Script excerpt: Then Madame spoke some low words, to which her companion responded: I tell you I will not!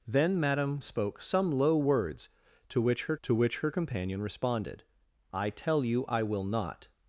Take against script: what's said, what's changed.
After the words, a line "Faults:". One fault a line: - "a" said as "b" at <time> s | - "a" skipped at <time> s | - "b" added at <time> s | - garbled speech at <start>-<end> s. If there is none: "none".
Then Madame spoke some low words, to which her to which her companion responded: I tell you I will not!
Faults:
- "to which her" added at 3.2 s